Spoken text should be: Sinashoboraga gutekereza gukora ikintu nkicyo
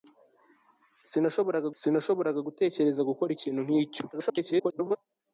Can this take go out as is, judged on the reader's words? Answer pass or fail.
fail